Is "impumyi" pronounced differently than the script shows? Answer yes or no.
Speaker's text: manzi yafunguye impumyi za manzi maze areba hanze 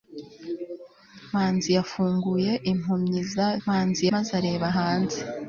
no